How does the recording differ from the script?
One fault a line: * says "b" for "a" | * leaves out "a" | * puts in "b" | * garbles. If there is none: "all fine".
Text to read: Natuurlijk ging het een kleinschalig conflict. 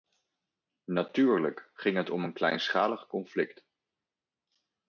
* puts in "om"